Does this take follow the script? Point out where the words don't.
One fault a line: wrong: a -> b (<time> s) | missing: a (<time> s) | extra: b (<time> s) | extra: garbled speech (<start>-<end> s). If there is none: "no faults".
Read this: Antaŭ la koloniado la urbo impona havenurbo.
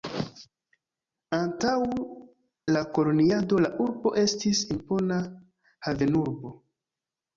extra: estis (4.3 s)